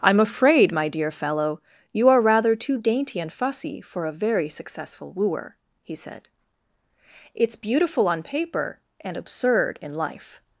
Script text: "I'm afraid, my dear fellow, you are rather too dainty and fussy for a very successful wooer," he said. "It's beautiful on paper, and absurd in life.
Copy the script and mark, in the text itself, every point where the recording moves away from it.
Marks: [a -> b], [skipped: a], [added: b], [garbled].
"I'm afraid, my dear fellow, you are rather too dainty and fussy for a very successful wooer," he said. "It's beautiful on paper, and absurd in life.